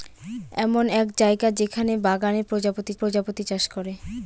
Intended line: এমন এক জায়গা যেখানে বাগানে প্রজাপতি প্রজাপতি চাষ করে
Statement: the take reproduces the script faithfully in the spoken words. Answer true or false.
true